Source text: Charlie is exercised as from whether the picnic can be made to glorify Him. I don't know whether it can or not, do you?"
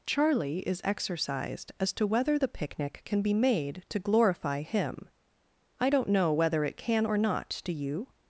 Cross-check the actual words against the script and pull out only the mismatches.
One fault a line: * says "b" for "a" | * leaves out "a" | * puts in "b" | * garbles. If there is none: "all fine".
* says "to" for "from"